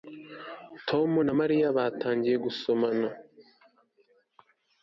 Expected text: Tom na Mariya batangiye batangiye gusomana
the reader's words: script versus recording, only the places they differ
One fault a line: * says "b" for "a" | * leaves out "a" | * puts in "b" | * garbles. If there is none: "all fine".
* leaves out "batangiye"